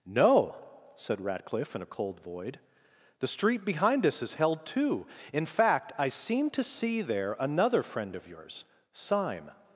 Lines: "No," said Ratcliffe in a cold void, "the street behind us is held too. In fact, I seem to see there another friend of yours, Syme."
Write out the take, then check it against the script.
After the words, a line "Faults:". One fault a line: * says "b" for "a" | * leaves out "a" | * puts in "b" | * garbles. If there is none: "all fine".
"No," said Ratcliffe in a cold void, "the street behind us is held too. In fact, I seem to see there another friend of yours, Syme."
Faults:
all fine